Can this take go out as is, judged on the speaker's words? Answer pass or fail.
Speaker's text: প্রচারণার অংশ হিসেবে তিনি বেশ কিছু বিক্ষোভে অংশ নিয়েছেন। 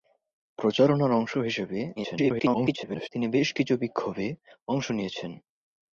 fail